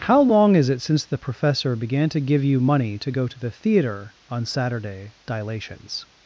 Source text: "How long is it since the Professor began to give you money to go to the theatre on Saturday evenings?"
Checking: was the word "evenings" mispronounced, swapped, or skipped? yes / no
yes